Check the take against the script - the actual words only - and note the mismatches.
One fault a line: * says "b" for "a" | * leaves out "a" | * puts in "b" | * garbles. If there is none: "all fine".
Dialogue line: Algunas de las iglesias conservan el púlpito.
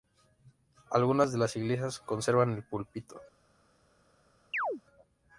all fine